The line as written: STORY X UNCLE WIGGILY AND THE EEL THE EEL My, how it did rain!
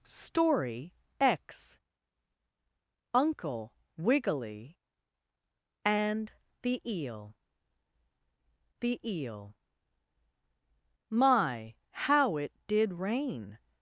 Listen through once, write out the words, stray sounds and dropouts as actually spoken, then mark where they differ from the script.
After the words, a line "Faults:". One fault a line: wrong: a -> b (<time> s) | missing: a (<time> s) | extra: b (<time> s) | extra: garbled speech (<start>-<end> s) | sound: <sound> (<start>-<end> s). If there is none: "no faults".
STORY X UNCLE WIGGILY AND THE EEL THE EEL My, how it did rain!
Faults:
no faults